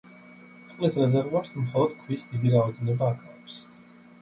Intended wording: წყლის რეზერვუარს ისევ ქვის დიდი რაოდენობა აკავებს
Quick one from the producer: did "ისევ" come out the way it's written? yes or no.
no